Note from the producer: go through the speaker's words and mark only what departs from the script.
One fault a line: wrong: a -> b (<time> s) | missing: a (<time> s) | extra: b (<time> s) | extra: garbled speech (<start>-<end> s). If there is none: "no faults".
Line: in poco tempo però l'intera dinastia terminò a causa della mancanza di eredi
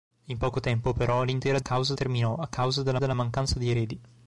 wrong: dinastia -> causa (1.6 s)
extra: della (3.0 s)